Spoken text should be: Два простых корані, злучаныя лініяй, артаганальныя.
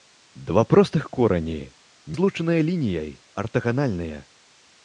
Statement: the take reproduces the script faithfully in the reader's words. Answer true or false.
true